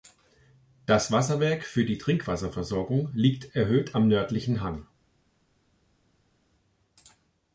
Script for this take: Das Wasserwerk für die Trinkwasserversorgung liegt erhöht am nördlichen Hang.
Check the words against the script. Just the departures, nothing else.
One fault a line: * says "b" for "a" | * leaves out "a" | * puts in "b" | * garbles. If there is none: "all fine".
all fine